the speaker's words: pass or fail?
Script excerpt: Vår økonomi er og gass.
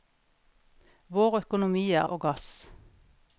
pass